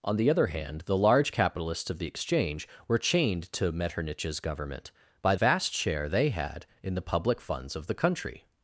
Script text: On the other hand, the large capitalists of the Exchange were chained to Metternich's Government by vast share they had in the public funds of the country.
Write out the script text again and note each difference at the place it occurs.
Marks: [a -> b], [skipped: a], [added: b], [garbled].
On the other hand, the large capitalists of the Exchange were chained to Metternich's Government by vast share they had in the public funds of the country.